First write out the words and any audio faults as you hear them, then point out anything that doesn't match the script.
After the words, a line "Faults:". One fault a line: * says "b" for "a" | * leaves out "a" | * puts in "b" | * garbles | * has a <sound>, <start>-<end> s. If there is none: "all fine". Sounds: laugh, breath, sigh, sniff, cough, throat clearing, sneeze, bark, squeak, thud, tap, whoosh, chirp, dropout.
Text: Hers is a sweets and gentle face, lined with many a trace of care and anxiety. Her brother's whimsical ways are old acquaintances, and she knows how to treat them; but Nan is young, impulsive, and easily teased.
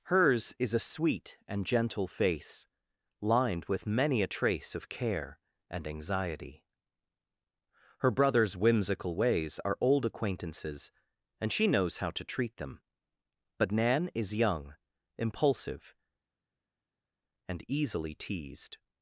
Hers is a sweet and gentle face, lined with many a trace of care and anxiety. Her brother's whimsical ways are old acquaintances, and she knows how to treat them; but Nan is young, impulsive, and easily teased.
Faults:
* says "sweet" for "sweets"